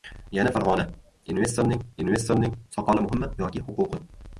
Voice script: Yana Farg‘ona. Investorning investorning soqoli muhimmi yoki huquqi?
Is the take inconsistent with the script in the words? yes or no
no